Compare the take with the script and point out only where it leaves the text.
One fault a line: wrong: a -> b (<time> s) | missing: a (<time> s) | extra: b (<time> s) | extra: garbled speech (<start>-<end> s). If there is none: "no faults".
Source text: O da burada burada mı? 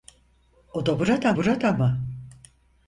no faults